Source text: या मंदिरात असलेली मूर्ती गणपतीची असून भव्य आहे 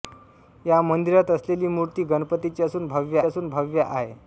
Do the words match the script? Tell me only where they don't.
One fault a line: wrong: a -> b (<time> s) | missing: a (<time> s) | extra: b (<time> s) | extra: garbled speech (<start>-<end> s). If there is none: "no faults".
extra: असून भव्य (3.2 s)